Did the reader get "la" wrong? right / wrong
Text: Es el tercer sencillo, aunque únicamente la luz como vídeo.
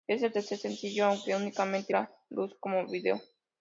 right